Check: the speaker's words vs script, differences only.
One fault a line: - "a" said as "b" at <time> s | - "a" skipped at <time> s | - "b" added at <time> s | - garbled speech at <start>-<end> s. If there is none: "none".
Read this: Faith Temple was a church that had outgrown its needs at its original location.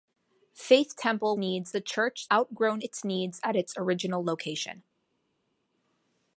- "was" said as "needs" at 1.4 s
- "that had" skipped at 2.3 s